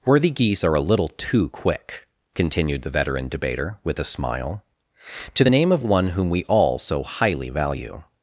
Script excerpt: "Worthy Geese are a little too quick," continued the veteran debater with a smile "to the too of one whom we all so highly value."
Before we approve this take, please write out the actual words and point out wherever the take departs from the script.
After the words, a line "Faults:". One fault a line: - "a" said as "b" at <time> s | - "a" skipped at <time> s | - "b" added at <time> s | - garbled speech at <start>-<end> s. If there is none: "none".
"Worthy Geese are a little too quick," continued the veteran debater with a smile "to the name of one whom we all so highly value."
Faults:
- "too" said as "name" at 5.5 s